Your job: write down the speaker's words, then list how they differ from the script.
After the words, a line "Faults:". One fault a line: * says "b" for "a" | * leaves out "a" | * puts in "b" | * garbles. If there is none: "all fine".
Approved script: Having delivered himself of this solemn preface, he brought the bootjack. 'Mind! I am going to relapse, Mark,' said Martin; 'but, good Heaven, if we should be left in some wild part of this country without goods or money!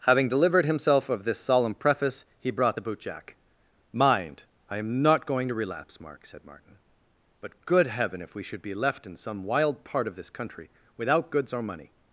Having delivered himself of this solemn preface, he brought the bootjack. 'Mind! I am not going to relapse, Mark,' said Martin; 'but, good Heaven, if we should be left in some wild part of this country without goods or money!
Faults:
* puts in "not"